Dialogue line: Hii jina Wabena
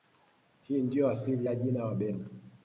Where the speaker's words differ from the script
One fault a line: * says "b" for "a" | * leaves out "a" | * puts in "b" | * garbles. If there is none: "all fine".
* puts in "ndiyo asili ya"